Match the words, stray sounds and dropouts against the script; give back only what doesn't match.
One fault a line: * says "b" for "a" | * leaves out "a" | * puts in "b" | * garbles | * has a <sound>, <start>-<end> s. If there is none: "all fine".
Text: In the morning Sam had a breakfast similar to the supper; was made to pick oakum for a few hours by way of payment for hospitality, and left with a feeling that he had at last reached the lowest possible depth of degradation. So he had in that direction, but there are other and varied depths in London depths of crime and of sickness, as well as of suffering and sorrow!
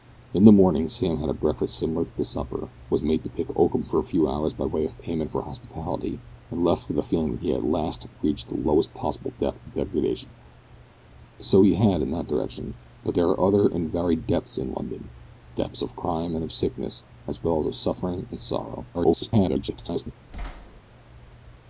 * garbles
* has a thud, 20.3-20.8 s